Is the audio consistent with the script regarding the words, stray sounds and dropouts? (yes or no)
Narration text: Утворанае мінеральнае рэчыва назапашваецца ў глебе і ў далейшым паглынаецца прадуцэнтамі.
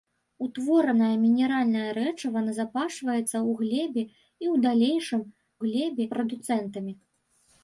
no